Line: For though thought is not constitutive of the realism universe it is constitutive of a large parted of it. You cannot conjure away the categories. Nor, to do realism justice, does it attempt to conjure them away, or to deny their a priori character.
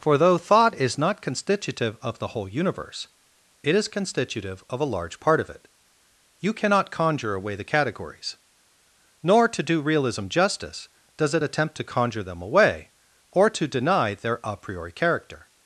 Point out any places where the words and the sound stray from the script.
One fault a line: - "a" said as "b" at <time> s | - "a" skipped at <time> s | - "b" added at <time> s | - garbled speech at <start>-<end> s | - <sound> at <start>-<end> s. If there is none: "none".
- "realism" said as "whole" at 2.3 s
- "parted" said as "part" at 5.2 s